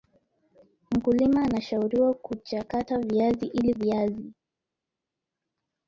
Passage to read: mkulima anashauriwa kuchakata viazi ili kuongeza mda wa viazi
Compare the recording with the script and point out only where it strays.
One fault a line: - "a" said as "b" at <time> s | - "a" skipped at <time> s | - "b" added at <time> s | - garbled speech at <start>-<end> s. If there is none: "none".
- "kuongeza mda wa" skipped at 3.7 s